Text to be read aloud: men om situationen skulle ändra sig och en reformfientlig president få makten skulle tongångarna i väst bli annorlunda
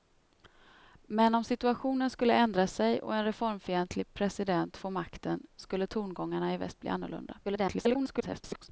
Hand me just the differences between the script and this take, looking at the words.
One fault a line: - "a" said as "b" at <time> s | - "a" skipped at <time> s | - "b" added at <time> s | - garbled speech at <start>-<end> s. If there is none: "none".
- garbled speech at 7.4-8.7 s